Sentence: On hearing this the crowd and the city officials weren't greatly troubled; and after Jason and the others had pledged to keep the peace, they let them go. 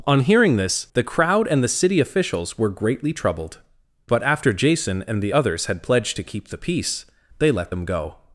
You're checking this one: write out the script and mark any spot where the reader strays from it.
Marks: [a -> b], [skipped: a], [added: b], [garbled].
On hearing this the crowd and the city officials [weren't -> were] greatly troubled; [and -> but] after Jason and the others had pledged to keep the peace, they let them go.